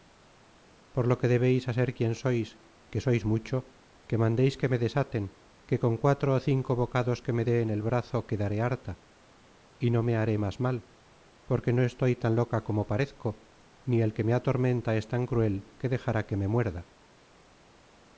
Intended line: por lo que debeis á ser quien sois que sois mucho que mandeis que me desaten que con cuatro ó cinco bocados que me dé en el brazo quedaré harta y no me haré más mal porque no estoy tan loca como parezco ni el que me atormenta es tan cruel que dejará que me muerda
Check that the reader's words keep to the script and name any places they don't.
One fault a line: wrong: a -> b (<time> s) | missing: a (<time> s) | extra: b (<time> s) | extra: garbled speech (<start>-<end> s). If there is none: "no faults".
no faults